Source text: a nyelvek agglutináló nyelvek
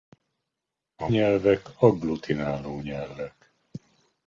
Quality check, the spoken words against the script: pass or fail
pass